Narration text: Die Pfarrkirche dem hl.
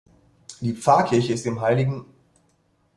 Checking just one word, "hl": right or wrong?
right